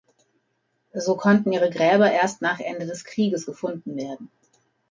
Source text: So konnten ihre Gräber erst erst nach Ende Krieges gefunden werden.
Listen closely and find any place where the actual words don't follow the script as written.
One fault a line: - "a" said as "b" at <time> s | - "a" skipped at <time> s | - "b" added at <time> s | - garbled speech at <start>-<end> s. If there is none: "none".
- "erst" skipped at 2.4 s
- "des" added at 2.9 s